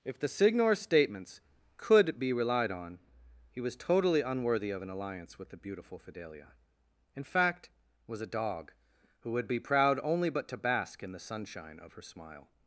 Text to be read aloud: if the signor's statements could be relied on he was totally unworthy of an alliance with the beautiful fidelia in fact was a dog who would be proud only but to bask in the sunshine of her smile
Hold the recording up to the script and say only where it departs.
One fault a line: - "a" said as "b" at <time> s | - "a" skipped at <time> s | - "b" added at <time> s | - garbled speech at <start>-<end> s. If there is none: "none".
none